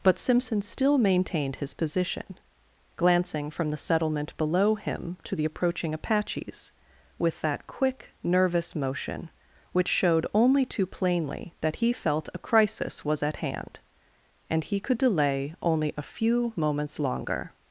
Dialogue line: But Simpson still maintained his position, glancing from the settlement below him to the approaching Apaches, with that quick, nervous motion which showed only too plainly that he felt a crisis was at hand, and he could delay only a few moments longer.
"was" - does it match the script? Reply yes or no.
yes